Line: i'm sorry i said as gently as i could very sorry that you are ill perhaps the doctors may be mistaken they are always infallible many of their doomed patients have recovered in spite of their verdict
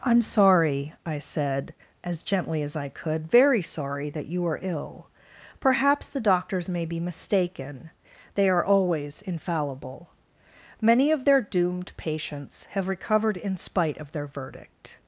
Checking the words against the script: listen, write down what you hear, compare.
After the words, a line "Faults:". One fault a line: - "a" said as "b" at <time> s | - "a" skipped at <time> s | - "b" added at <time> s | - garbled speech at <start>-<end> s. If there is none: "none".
i'm sorry i said as gently as i could very sorry that you are ill perhaps the doctors may be mistaken they are always infallible many of their doomed patients have recovered in spite of their verdict
Faults:
none